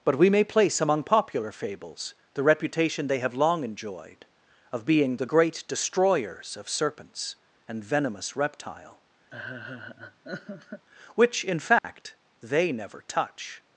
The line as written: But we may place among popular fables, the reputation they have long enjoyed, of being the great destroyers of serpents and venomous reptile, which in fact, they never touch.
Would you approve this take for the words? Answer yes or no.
yes